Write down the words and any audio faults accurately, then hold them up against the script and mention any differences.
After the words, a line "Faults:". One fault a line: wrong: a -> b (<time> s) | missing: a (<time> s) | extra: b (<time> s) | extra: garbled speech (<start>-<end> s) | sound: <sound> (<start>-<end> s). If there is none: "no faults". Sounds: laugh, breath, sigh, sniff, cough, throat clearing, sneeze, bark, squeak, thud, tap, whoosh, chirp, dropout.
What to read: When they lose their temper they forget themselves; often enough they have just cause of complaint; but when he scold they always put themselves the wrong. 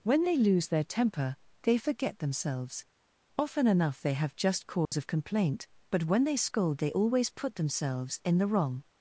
When they lose their temper they forget themselves; often enough they have just cause of complaint; but when they scold they always put themselves in the wrong.
Faults:
sound: dropout (4.9-4.9 s)
wrong: he -> they (6.2 s)
extra: in (8.2 s)